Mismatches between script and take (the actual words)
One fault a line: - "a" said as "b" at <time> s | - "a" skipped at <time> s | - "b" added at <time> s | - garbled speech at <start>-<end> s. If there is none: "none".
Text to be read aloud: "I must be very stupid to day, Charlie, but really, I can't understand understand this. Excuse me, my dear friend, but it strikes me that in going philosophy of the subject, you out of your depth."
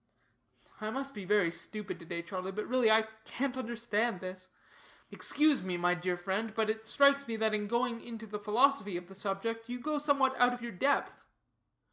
- "understand" skipped at 4.2 s
- "into the" added at 8.0 s
- "go somewhat" added at 9.8 s